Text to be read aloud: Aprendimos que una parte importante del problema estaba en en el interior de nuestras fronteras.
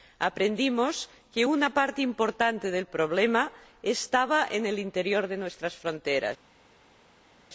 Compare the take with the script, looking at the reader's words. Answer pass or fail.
fail